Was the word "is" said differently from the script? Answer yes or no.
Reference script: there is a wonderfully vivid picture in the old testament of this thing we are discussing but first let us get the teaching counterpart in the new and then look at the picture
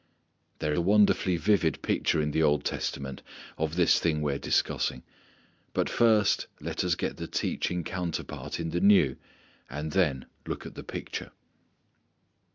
yes